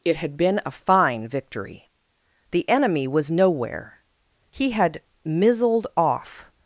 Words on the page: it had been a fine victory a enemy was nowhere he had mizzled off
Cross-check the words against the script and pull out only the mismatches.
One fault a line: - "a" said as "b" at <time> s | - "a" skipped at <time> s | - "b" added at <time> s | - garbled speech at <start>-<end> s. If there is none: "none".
- "a" said as "the" at 2.5 s